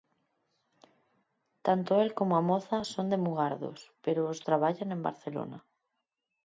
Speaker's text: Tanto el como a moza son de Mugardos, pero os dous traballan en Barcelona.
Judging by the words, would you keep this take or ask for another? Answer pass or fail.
fail